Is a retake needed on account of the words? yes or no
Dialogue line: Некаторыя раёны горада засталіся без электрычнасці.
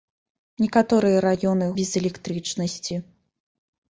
yes